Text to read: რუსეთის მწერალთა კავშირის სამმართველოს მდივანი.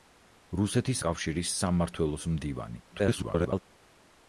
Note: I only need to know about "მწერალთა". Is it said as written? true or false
false